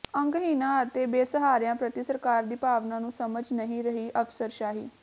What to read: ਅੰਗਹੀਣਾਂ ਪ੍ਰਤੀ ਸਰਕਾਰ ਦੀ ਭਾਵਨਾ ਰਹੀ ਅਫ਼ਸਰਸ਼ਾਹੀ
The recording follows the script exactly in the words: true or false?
false